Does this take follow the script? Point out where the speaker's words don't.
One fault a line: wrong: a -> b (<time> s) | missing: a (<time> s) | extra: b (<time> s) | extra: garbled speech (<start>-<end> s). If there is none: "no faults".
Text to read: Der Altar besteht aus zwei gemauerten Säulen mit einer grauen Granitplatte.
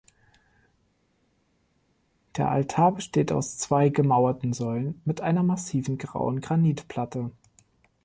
extra: massiven (5.4 s)